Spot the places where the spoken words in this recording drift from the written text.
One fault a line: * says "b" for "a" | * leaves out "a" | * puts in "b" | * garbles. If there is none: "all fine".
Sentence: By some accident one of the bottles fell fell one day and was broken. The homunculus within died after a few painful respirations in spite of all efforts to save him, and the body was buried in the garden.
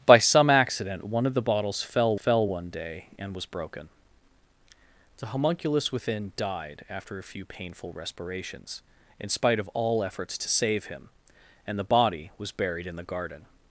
all fine